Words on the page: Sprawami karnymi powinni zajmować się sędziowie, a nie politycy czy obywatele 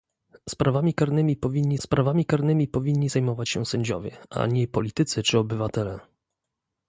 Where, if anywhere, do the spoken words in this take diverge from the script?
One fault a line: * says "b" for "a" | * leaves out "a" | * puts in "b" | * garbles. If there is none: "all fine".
* puts in "sprawami karnymi powinni"